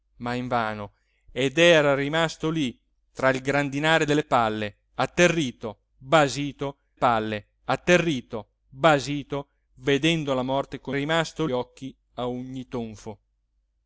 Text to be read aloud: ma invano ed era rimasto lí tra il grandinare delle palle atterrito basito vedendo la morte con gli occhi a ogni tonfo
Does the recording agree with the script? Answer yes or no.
no